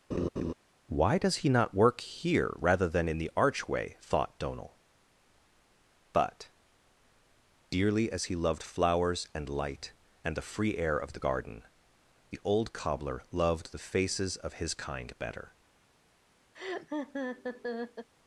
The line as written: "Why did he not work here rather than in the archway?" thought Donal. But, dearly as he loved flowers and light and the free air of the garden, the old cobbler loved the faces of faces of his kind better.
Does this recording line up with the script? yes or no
no